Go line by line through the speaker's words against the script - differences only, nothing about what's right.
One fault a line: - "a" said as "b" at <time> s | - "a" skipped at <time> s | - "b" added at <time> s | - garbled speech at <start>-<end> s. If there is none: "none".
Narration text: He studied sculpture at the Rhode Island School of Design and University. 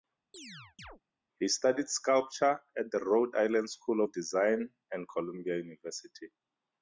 - "Columbia" added at 5.1 s